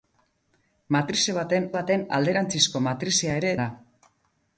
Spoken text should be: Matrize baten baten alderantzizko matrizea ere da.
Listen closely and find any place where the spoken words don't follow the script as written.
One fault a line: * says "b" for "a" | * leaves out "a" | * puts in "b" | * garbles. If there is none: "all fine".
all fine